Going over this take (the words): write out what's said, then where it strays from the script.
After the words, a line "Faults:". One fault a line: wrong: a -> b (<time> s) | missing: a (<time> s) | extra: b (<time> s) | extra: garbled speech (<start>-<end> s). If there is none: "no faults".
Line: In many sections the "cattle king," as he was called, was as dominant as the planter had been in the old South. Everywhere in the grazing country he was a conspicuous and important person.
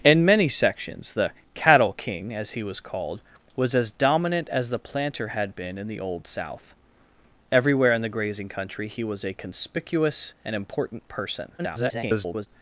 In many sections the "cattle king," as he was called, was as dominant as the planter had been in the old South. Everywhere in the grazing country he was a conspicuous and important person. [garbled]
Faults:
extra: garbled speech (11.6-12.5 s)